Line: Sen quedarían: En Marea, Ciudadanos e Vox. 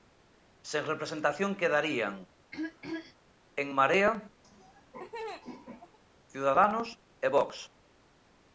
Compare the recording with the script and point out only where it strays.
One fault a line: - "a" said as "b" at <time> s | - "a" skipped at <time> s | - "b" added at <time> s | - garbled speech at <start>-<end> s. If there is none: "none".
- "representación" added at 0.9 s